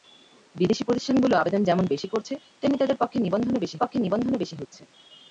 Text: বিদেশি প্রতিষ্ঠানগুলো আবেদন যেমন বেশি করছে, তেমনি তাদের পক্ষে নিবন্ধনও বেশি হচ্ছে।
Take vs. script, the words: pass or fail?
fail